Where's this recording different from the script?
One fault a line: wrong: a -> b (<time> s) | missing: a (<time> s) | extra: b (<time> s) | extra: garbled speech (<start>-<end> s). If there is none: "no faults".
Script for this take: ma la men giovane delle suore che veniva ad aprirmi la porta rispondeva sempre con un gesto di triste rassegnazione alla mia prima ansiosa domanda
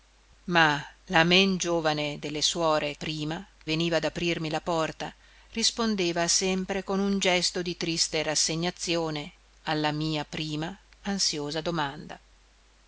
wrong: che -> prima (2.9 s)